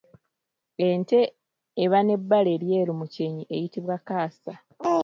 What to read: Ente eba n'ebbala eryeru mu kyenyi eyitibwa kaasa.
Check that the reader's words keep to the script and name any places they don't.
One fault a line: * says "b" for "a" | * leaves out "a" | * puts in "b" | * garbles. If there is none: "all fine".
all fine